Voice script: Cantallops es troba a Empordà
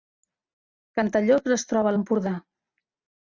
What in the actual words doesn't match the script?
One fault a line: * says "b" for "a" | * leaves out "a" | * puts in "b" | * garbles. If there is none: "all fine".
all fine